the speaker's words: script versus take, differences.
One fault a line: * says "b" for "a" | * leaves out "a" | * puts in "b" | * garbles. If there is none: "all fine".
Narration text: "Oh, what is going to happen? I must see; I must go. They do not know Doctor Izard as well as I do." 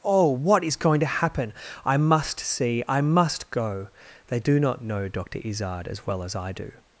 all fine